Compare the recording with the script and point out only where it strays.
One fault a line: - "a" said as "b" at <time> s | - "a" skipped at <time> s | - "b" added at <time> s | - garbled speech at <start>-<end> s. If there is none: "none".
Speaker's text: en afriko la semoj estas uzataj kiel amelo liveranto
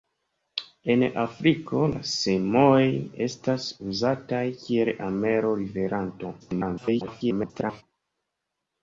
- garbled speech at 6.4-7.8 s